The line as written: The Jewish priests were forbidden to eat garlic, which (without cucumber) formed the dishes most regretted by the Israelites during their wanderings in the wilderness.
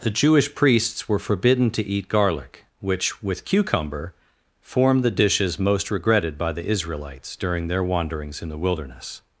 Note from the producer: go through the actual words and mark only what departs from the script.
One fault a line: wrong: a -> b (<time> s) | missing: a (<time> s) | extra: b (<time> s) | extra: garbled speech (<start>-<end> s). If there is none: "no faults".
wrong: without -> with (3.2 s)